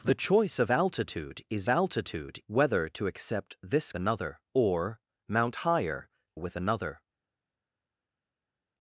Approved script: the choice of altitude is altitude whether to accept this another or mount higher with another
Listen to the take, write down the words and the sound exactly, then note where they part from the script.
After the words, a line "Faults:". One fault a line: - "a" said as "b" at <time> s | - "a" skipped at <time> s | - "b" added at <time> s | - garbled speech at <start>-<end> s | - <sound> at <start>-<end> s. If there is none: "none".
the choice of altitude is altitude whether to accept this another or mount higher with another
Faults:
none